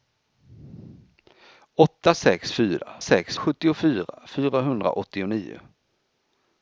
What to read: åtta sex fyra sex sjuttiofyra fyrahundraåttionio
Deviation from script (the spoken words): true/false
false